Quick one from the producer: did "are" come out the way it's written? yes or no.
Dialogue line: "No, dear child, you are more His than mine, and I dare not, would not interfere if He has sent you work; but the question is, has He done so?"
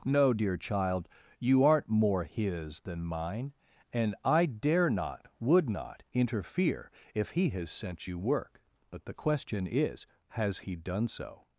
no